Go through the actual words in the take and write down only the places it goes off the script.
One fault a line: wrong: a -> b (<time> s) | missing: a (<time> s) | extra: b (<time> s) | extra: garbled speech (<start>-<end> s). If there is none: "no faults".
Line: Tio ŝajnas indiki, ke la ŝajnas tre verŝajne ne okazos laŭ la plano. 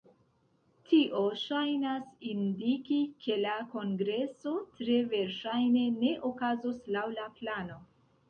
wrong: ŝajnas -> kongreso (3.7 s)